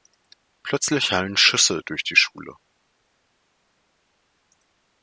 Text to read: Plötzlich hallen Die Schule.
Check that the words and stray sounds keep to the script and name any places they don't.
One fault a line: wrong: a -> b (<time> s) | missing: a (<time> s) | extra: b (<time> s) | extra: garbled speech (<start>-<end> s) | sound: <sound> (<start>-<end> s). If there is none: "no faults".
extra: Schüsse durch (1.4 s)